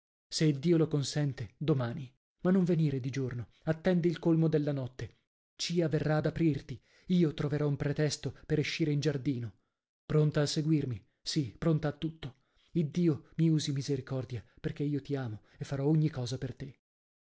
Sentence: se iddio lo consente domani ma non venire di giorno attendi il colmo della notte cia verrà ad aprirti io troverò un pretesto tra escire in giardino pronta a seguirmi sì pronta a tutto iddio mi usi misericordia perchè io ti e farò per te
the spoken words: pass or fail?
fail